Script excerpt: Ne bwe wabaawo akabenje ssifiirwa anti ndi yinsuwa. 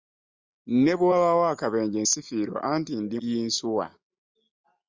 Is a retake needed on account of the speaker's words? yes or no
no